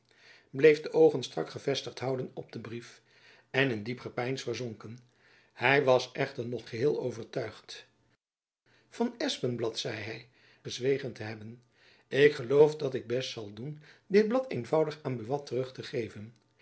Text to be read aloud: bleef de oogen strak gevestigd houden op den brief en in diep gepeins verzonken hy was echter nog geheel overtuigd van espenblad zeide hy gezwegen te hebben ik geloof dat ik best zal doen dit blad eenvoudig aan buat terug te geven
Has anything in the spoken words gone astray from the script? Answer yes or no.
no